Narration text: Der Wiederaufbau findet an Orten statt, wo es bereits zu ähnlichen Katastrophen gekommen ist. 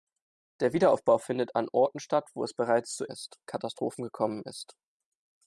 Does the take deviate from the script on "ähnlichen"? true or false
true